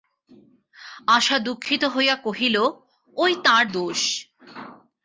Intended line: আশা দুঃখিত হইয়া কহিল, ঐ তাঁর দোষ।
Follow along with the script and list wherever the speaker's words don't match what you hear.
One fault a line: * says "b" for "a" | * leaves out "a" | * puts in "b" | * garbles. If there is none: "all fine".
all fine